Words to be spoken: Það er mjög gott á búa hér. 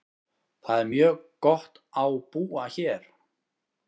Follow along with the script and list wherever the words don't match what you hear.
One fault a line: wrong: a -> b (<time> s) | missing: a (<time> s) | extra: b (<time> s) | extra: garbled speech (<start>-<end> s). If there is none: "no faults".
no faults